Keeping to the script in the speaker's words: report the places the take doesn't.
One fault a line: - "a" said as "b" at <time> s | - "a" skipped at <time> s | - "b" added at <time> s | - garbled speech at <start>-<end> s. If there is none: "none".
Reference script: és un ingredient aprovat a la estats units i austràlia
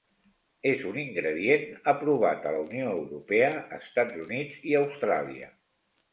- "unió europea" added at 2.7 s